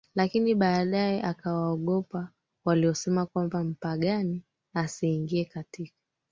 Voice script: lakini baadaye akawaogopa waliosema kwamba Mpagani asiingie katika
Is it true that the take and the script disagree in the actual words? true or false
false